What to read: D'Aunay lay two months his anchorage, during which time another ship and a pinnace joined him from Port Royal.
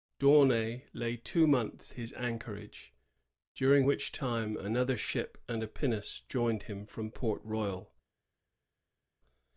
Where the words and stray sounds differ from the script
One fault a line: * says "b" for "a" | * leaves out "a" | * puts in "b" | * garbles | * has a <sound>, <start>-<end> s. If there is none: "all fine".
all fine